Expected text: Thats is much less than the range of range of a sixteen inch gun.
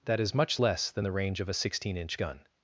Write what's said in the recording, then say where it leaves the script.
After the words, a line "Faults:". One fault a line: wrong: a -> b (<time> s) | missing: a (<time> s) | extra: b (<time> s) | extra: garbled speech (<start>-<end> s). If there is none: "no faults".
That is much less than the range of a sixteen inch gun.
Faults:
wrong: Thats -> That (0.1 s)
missing: range of (1.5 s)